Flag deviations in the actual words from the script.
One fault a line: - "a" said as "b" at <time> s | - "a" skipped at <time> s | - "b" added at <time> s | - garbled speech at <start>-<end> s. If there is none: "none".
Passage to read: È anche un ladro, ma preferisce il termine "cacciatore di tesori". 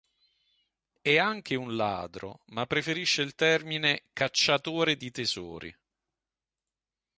none